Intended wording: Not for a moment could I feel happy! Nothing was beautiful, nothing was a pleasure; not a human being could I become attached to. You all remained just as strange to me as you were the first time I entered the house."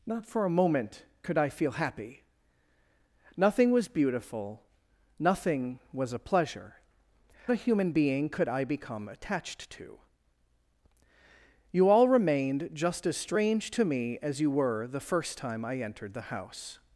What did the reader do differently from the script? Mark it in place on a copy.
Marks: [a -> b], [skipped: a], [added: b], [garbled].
Not for a moment could I feel happy! Nothing was beautiful, nothing was a pleasure; [skipped: not] a human being could I become attached to. You all remained just as strange to me as you were the first time I entered the house."